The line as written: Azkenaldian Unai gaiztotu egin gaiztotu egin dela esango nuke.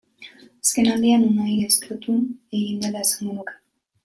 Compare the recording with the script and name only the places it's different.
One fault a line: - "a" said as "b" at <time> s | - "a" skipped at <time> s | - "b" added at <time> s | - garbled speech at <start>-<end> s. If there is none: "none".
- "gaiztotu egin" skipped at 2.8 s